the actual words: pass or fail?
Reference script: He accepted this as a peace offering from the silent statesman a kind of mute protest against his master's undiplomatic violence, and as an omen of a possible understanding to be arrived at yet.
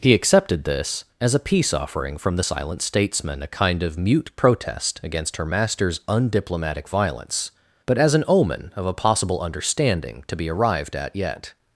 fail